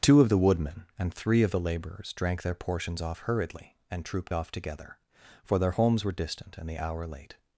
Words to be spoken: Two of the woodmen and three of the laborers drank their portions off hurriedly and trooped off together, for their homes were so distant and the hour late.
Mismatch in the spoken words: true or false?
true